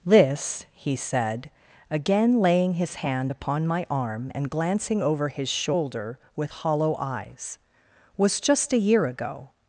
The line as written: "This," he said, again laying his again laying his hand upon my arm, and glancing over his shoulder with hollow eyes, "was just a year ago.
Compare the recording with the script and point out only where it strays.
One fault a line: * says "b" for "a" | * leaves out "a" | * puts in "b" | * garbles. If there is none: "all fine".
* leaves out "again laying his"